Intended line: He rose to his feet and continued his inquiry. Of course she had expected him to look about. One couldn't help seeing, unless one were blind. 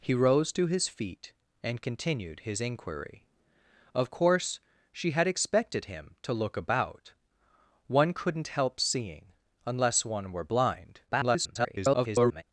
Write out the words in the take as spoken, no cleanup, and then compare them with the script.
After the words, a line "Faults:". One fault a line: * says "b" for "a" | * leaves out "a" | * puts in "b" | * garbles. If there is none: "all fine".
He rose to his feet and continued his inquiry. Of course she had expected him to look about. One couldn't help seeing, unless one were blind. [garbled]
Faults:
* garbles